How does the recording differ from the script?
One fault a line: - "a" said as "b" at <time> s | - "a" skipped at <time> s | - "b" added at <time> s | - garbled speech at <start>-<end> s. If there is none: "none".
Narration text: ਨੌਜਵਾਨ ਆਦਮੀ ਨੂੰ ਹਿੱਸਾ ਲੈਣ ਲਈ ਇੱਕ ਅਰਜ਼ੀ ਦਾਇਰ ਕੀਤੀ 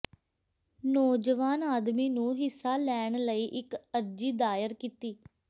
none